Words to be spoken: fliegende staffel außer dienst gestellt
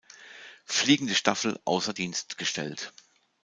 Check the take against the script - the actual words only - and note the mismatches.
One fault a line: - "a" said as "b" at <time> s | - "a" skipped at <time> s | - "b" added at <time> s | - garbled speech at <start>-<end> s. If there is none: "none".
none